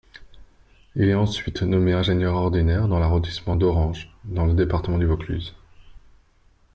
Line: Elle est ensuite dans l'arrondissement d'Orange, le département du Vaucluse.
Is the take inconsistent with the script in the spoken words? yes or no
yes